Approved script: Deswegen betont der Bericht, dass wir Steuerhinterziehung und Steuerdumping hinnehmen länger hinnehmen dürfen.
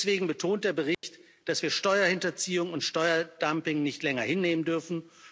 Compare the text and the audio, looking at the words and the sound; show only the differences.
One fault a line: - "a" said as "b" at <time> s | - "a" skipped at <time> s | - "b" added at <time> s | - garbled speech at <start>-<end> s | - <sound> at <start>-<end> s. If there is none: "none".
- dropout at 0.9-1.0 s
- "hinnehmen" said as "nicht" at 3.8 s